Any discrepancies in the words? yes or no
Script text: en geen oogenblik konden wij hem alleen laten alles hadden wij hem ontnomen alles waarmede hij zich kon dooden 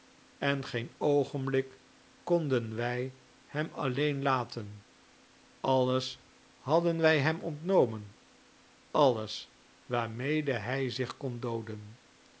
no